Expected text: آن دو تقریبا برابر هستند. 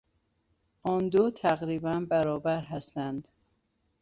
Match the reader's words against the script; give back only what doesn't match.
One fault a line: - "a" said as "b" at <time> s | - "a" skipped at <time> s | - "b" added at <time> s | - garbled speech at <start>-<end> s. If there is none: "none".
none